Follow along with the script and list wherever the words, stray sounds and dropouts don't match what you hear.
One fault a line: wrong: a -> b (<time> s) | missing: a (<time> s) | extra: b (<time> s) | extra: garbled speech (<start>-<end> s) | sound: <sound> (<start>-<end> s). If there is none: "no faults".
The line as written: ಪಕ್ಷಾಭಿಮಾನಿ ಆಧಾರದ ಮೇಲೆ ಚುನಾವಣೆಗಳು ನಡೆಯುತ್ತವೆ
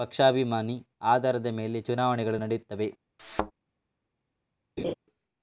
sound: thud (3.2-3.5 s)
sound: laugh (4.8-4.9 s)